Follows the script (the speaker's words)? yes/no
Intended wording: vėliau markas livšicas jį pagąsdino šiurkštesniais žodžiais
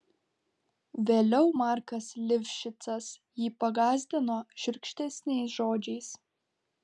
yes